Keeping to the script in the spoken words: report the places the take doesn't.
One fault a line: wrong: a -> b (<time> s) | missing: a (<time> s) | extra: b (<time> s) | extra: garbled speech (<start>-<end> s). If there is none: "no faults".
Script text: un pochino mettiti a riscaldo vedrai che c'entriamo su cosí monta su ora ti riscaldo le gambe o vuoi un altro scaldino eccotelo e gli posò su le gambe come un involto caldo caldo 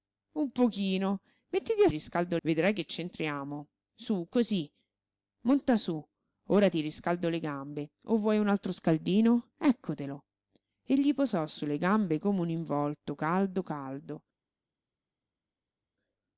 no faults